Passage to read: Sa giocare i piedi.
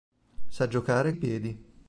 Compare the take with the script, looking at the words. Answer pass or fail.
pass